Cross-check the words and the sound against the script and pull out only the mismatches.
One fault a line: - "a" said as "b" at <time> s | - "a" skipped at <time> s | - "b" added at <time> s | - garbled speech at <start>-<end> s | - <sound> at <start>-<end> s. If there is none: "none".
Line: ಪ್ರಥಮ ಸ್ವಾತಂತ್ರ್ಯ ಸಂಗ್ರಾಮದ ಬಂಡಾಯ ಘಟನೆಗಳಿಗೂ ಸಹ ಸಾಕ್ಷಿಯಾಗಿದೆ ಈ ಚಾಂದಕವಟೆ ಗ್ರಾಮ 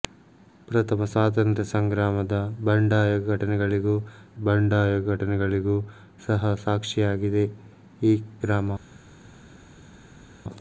- "ಬಂಡಾಯ ಘಟನೆಗಳಿಗೂ" added at 4.4 s
- "ಚಾಂದಕವಟೆ" skipped at 8.1 s